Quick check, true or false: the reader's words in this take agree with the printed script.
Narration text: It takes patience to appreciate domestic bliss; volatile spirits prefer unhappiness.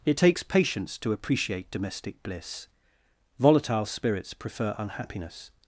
true